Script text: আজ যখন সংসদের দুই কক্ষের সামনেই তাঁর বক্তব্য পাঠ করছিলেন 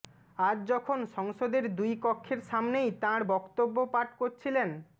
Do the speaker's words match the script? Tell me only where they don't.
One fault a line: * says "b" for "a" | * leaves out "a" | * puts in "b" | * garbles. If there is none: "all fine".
all fine